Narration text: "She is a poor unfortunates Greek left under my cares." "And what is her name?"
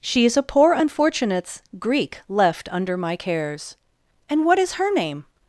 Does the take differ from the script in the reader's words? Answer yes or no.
no